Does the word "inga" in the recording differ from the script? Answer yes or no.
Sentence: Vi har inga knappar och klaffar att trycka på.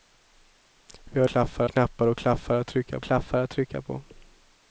yes